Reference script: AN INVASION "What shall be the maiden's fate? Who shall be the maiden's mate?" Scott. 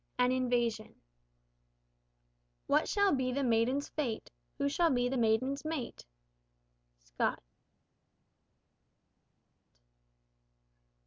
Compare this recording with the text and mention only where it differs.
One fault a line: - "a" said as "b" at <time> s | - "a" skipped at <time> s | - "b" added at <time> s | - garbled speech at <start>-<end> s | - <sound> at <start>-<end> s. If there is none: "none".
none